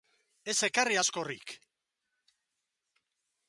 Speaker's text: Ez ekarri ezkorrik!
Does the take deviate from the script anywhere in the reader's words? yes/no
no